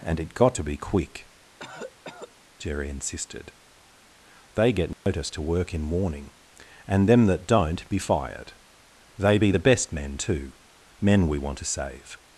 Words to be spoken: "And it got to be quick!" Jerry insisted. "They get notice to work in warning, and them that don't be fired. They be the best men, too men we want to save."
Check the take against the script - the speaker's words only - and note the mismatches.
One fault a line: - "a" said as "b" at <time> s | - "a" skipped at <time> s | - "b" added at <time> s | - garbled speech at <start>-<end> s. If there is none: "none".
none